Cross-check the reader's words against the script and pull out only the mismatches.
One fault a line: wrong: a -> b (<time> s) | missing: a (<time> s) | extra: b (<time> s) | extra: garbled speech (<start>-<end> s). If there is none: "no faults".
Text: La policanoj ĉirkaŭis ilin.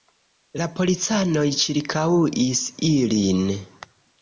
no faults